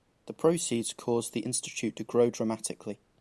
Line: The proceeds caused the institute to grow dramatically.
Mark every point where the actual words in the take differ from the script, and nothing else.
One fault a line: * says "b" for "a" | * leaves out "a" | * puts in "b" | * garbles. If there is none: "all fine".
all fine